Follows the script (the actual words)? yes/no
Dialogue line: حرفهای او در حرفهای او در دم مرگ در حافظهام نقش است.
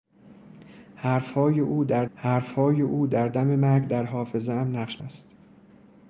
yes